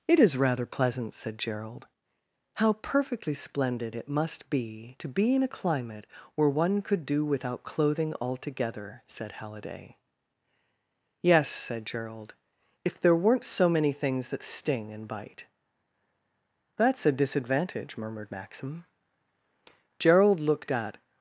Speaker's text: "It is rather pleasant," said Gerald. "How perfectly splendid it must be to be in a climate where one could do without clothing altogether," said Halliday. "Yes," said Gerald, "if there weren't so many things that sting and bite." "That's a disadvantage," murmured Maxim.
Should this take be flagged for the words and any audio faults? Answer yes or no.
yes